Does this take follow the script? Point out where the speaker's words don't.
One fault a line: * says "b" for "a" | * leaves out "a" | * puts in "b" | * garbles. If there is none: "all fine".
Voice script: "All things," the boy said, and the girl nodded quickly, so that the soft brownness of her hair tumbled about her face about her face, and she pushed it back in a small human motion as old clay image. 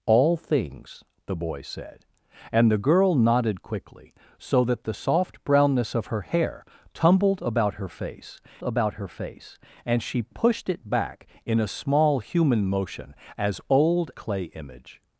all fine